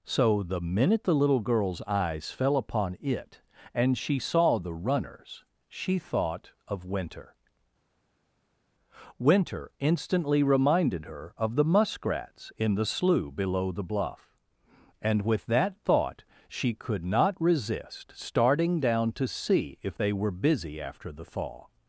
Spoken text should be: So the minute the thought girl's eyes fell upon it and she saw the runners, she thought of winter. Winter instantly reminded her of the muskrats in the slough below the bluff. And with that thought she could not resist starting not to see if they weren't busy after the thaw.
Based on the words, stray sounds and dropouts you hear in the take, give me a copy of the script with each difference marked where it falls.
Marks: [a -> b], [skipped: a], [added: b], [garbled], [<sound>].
So the minute the [thought -> little] girl's eyes fell upon it and she saw the runners, she thought of winter. Winter instantly reminded her of the muskrats in the slough below the bluff. And with that thought she could not resist starting [not -> down] to see if they [weren't -> were] busy after the thaw.